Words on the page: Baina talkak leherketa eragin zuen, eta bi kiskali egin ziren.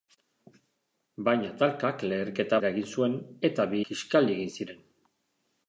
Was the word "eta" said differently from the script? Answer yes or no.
no